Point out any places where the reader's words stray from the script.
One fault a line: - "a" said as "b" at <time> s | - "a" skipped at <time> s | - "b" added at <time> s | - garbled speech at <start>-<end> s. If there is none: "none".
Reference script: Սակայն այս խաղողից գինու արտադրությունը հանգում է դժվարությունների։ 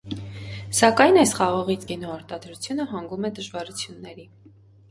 none